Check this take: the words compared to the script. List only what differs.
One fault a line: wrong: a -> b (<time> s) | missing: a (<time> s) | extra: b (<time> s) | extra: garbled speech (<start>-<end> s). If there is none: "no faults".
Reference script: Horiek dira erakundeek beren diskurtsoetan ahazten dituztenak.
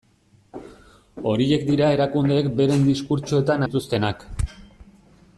missing: ahazten (3.7 s)